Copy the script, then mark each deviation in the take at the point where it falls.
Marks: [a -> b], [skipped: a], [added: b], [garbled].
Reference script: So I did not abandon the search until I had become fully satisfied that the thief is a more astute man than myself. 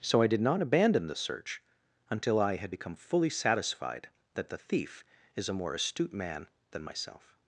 So I did not abandon the search until I had become fully satisfied that the thief is a more astute man than myself.